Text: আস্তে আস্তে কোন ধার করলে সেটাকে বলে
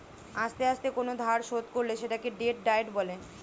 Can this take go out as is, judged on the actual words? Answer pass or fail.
fail